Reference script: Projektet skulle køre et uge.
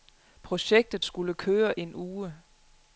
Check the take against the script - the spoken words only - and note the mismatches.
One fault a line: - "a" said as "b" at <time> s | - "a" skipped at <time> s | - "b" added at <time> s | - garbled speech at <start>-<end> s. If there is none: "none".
- "et" said as "en" at 1.8 s